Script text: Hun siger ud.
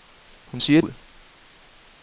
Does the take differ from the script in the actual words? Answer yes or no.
no